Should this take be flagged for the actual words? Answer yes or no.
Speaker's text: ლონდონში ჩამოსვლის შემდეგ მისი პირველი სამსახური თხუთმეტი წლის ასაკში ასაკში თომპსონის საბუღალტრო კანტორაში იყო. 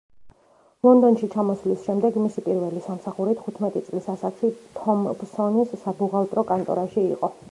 yes